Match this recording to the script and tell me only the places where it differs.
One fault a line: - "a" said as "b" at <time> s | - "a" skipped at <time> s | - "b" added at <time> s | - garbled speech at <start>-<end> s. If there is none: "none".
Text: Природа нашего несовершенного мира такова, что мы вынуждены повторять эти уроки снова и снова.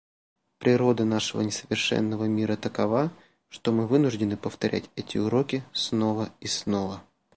none